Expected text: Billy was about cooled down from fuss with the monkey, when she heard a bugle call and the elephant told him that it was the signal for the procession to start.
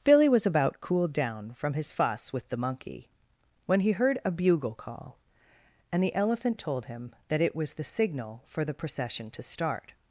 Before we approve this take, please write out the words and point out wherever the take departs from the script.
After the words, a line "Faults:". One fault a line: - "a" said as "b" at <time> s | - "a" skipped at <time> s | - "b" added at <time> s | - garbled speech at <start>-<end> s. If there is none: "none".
Billy was about cooled down from his fuss with the monkey, when he heard a bugle call and the elephant told him that it was the signal for the procession to start.
Faults:
- "his" added at 1.8 s
- "she" said as "he" at 3.8 s